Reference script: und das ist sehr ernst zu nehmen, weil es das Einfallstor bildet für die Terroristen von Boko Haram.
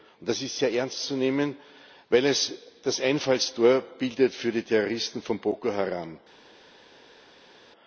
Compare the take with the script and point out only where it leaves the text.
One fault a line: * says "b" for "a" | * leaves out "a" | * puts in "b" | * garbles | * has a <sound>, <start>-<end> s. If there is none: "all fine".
all fine